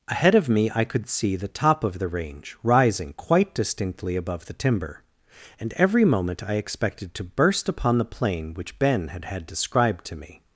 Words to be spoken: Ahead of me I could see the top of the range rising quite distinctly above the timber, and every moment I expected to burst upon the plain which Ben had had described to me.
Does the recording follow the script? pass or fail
pass